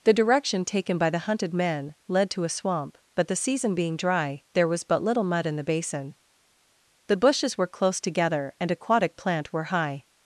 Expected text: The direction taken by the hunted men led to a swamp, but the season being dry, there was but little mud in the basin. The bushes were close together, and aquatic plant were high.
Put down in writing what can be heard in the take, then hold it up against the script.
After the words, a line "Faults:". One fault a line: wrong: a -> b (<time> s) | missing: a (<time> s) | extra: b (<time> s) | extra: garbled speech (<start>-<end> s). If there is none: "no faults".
The direction taken by the hunted men led to a swamp, but the season being dry, there was but little mud in the basin. The bushes were close together, and aquatic plant were high.
Faults:
no faults